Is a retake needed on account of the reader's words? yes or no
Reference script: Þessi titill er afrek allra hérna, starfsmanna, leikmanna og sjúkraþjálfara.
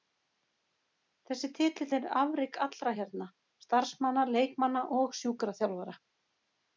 no